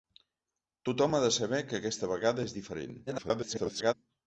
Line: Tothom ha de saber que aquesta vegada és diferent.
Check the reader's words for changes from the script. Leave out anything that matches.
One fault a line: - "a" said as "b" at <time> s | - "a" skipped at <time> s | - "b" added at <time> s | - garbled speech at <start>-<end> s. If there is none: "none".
- garbled speech at 3.1-3.9 s